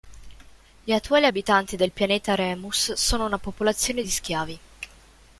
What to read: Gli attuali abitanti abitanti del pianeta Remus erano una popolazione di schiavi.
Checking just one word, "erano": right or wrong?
wrong